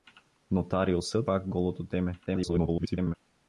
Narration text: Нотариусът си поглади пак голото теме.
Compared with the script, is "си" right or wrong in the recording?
wrong